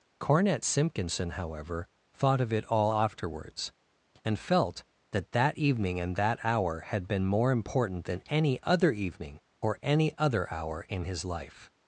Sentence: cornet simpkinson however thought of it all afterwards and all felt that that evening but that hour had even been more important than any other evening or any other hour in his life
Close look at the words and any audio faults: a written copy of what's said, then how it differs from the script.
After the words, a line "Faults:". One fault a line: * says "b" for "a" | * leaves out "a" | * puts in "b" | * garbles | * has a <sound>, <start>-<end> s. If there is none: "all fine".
cornet simpkinson however thought of it all afterwards and felt that that evening and that hour had been more important than any other evening or any other hour in his life
Faults:
* leaves out "all"
* says "and" for "but"
* leaves out "even"